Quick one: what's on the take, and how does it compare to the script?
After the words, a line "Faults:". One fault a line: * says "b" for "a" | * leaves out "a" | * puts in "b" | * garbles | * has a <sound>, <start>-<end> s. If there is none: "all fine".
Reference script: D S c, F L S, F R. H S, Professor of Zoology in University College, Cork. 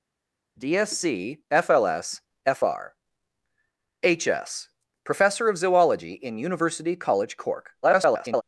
D S c, F L S, F R. H S, Professor of Zoology in University College, Cork. [garbled]
Faults:
* garbles